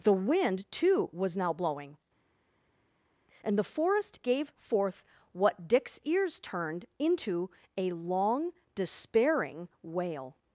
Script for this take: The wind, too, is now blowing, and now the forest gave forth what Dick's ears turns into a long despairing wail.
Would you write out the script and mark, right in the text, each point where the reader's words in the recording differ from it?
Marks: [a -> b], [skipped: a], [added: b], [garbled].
The wind, too, [is -> was] now blowing, and [skipped: now] the forest gave forth what Dick's ears [turns -> turned] into a long despairing wail.